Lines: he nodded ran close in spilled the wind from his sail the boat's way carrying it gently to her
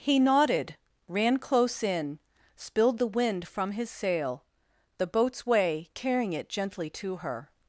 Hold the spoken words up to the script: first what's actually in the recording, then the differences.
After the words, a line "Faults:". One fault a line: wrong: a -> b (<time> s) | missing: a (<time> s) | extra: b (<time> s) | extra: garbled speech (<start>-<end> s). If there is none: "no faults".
he nodded ran close in spilled the wind from his sail the boat's way carrying it gently to her
Faults:
no faults